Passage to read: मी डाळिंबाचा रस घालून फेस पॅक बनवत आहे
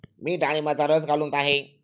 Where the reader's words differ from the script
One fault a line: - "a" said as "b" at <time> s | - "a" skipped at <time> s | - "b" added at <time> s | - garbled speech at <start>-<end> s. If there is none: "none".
- "फेस पॅक बनवत" skipped at 1.3 s